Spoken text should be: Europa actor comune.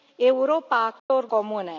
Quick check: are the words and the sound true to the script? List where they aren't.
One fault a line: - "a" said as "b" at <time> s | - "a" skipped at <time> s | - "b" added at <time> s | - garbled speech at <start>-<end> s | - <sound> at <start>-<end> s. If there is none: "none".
- dropout at 1.0-1.1 s